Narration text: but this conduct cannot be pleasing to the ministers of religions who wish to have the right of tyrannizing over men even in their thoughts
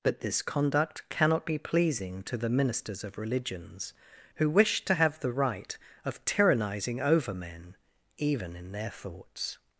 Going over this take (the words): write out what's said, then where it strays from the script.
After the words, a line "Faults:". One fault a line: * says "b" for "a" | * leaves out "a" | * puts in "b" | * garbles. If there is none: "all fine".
but this conduct cannot be pleasing to the ministers of religions who wish to have the right of tyrannizing over men even in their thoughts
Faults:
all fine